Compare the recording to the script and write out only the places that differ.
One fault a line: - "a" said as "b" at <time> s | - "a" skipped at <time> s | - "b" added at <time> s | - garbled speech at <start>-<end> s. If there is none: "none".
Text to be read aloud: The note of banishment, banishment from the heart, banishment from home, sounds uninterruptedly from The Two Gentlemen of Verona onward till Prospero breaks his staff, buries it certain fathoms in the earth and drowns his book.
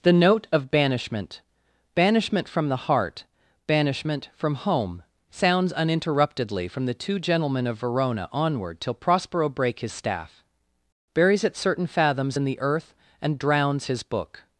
- "breaks" said as "break" at 9.5 s